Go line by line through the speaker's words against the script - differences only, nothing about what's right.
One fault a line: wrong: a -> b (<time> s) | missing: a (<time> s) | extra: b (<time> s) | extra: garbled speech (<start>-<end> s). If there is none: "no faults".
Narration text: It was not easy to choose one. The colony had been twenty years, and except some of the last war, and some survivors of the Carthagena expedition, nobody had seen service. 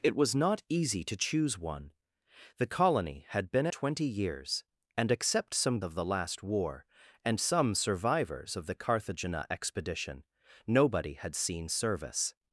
no faults